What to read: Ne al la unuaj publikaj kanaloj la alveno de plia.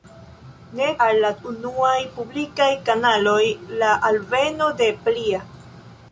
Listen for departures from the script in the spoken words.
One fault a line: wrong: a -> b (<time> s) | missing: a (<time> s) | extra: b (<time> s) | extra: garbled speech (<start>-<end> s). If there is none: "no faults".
no faults